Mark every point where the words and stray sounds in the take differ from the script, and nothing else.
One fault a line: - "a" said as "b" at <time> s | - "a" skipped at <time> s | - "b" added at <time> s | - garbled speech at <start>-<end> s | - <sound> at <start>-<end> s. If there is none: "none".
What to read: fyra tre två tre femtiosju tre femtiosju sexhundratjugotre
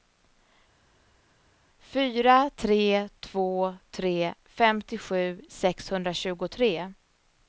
- "tre femtiosju" skipped at 5.4 s